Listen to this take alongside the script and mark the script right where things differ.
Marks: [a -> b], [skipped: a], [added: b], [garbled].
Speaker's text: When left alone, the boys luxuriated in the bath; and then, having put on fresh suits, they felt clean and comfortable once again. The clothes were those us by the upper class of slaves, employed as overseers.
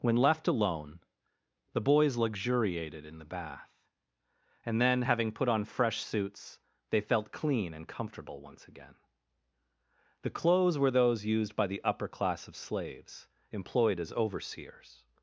When left alone, the boys luxuriated in the bath; and then, having put on fresh suits, they felt clean and comfortable once again. The clothes were those [us -> used] by the upper class of slaves, employed as overseers.